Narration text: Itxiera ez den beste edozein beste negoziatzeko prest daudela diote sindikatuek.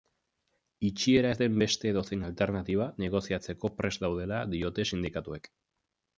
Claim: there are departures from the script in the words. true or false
true